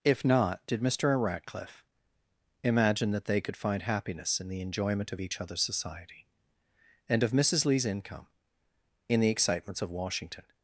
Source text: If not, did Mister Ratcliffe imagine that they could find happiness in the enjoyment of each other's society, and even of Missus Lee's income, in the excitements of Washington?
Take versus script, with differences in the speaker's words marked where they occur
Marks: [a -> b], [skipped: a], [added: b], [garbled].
If not, did Mister Ratcliffe imagine that they could find happiness in the enjoyment of each other's society, and [skipped: even] of Missus Lee's income, in the excitements of Washington?